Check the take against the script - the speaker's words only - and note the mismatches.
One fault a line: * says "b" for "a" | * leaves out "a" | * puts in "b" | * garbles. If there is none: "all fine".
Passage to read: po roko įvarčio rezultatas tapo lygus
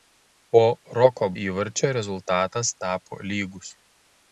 all fine